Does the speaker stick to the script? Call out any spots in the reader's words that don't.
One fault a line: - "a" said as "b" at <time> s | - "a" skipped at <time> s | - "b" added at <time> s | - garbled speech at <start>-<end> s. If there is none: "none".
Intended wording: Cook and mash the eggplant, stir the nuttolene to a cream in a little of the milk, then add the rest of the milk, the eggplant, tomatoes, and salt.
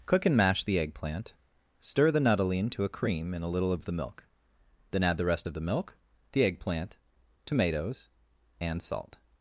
none